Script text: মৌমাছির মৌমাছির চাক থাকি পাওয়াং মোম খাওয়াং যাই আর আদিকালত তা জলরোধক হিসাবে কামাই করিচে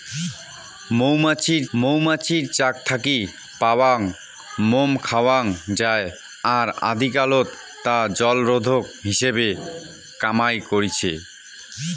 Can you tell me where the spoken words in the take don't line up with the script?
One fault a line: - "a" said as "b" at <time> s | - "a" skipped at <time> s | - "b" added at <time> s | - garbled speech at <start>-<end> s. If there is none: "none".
none